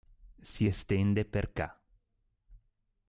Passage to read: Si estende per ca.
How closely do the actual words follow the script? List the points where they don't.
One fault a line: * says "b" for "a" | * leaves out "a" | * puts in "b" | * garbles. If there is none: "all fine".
all fine